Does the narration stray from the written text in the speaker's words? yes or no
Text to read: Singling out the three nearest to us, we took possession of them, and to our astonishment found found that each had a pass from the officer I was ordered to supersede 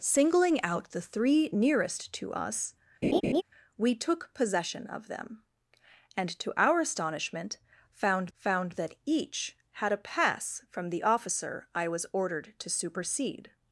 no